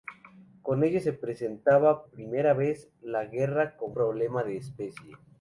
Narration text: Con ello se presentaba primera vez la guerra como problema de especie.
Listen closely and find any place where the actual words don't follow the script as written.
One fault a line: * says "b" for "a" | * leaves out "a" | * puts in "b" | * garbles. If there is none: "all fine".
all fine